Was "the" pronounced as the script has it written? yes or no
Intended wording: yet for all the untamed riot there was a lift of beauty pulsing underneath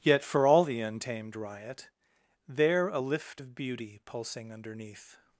yes